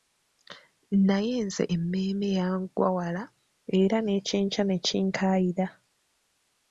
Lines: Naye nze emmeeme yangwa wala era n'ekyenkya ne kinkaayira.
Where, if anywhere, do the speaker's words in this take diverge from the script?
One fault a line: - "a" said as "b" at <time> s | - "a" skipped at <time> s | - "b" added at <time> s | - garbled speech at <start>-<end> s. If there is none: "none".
none